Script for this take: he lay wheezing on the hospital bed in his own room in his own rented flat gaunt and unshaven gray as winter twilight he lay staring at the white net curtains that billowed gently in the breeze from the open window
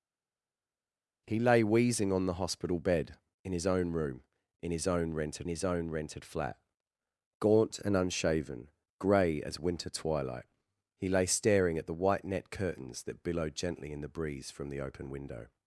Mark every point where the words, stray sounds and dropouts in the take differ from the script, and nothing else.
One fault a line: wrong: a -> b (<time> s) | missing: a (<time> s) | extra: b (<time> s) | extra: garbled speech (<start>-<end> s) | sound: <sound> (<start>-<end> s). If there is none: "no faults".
extra: his own rented (5.5 s)